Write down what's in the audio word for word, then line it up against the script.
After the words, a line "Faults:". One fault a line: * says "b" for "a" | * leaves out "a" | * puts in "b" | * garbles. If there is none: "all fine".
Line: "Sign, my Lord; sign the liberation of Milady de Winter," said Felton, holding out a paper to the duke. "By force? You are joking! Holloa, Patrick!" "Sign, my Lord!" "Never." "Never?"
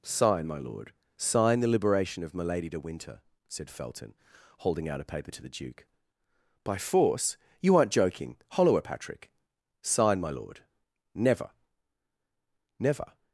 "Sign, my Lord; sign the liberation of Milady de Winter," said Felton, holding out a paper to the duke. "By force? You aren't joking! Holloa, Patrick!" "Sign, my Lord!" "Never." "Never?"
Faults:
* says "aren't" for "are"